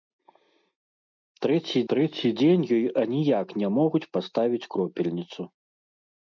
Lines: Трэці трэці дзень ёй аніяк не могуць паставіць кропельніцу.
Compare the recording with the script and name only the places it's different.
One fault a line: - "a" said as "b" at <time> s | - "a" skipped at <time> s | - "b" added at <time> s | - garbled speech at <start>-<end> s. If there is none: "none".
none